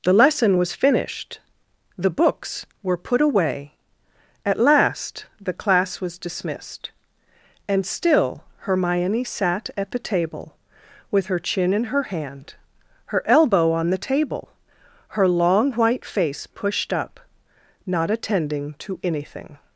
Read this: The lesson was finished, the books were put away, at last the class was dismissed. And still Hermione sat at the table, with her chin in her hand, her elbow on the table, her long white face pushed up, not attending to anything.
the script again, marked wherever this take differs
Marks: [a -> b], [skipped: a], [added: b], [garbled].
The lesson was finished, the books were put away, at last the class was dismissed. And still Hermione sat at the table, with her chin in her hand, her elbow on the table, her long white face pushed up, not attending to anything.